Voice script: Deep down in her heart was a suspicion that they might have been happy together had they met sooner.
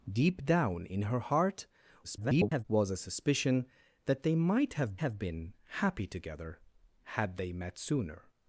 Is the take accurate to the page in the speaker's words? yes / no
no